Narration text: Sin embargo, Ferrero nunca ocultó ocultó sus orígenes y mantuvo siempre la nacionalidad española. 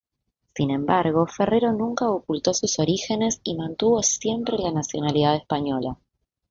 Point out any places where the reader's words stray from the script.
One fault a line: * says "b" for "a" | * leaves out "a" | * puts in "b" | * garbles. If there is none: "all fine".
* leaves out "ocultó"